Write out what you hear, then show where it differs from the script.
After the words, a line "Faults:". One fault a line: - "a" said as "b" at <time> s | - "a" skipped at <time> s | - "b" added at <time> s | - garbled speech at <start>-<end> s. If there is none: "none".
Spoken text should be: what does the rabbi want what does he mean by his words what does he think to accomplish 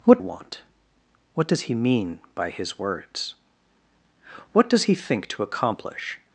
what want what does he mean by his words what does he think to accomplish
Faults:
- "does the rabbi" skipped at 0.2 s